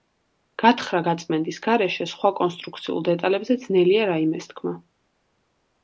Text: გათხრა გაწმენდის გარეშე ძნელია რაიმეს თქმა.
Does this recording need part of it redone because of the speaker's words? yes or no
yes